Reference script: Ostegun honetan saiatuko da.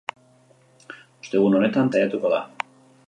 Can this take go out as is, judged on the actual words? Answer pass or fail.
pass